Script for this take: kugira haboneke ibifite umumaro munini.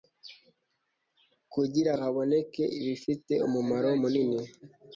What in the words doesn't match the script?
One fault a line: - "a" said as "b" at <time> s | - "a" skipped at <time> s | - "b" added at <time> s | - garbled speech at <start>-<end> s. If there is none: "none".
none